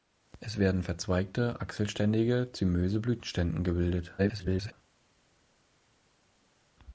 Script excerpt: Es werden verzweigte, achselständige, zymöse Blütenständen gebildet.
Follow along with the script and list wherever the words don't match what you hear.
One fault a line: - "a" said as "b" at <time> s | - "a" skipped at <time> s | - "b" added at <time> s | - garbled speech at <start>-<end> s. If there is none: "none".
- garbled speech at 4.2-4.7 s